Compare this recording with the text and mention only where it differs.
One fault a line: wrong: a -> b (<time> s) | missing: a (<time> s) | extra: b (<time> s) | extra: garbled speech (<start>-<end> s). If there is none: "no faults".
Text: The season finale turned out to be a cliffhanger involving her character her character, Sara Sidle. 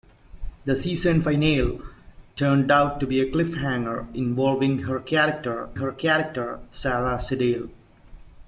no faults